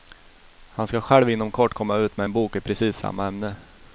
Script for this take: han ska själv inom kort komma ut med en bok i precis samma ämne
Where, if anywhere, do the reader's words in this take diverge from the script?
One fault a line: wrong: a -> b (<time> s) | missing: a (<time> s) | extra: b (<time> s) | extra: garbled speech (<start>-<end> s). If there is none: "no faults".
no faults